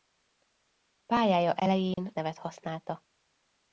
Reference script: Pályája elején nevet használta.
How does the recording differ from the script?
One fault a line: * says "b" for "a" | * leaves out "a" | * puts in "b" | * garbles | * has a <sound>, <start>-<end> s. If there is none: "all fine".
* has a dropout, 1.9-2.0 s